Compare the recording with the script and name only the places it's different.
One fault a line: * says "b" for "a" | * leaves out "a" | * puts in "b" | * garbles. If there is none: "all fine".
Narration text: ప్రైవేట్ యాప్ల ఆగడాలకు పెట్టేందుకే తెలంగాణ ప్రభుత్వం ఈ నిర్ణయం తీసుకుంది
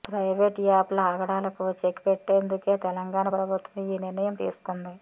* puts in "చెక్"